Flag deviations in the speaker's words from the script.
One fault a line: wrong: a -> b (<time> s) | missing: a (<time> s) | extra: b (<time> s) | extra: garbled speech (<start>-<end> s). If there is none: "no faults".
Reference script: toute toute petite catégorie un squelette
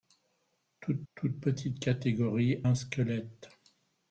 no faults